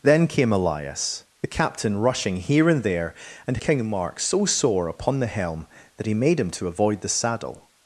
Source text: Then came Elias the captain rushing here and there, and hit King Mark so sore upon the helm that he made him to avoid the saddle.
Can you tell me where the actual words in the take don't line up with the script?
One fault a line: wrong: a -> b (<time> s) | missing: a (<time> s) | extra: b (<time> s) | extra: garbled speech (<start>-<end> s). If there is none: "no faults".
missing: hit (3.6 s)